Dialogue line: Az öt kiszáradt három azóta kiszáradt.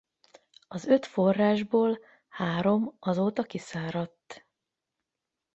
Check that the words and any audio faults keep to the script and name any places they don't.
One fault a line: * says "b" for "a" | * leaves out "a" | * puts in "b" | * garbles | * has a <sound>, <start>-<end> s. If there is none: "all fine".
* says "forrásból" for "kiszáradt"